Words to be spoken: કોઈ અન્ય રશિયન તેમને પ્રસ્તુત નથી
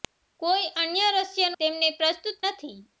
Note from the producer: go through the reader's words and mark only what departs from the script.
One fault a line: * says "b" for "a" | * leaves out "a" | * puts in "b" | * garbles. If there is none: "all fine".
all fine